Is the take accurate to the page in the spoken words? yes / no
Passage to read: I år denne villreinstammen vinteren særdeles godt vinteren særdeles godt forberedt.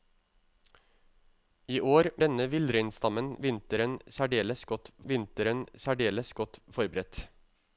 yes